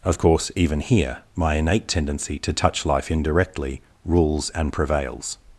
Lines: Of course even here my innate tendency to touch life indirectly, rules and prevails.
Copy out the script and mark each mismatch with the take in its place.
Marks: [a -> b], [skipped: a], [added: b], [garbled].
Of course even here my innate tendency to touch life indirectly, rules and prevails.